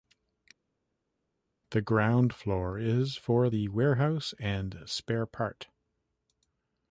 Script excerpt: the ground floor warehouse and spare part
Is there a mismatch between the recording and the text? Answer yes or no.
yes